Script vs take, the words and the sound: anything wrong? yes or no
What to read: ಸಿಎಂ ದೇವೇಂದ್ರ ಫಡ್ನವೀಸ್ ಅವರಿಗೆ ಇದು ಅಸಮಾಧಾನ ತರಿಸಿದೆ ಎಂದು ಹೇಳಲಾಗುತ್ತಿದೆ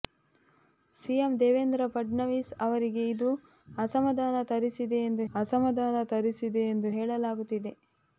yes